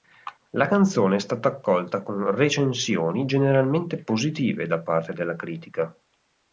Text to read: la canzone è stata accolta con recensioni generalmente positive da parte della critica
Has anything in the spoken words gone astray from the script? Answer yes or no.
no